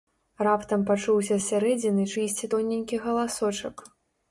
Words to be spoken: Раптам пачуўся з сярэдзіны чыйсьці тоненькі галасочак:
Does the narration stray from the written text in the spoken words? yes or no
no